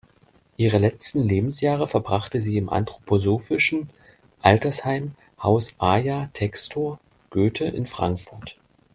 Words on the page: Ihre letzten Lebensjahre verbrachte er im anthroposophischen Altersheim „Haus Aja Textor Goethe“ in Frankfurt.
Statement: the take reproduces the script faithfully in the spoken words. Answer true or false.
false